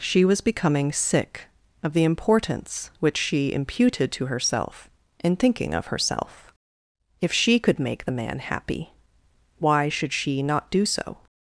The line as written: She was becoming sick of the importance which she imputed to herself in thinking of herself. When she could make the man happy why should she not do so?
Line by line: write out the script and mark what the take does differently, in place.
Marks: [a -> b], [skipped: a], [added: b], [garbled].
She was becoming sick of the importance which she imputed to herself in thinking of herself. [When -> If] she could make the man happy why should she not do so?